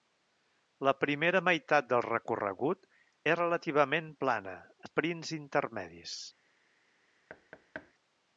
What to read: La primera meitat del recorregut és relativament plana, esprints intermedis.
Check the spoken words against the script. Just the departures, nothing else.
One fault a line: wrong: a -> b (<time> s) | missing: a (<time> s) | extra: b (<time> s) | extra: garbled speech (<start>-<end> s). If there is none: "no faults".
no faults